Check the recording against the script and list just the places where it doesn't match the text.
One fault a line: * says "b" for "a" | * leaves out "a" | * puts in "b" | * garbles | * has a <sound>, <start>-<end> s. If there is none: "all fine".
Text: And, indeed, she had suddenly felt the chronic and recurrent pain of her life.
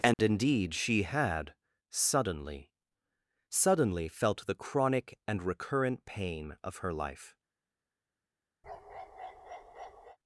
* has a dropout, 0.1-0.2 s
* puts in "suddenly"
* has a bark, 8.6-10.2 s